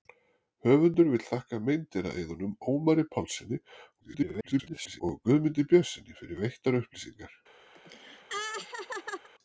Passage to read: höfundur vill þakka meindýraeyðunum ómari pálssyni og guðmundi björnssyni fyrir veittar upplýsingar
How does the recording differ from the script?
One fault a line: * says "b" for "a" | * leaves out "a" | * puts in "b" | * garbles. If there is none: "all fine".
* garbles